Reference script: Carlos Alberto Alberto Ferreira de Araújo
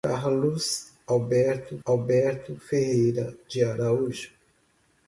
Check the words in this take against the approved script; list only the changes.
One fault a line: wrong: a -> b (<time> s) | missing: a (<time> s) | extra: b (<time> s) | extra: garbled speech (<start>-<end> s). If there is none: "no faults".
no faults